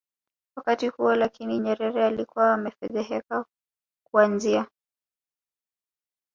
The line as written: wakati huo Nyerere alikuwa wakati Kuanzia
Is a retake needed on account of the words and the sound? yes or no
yes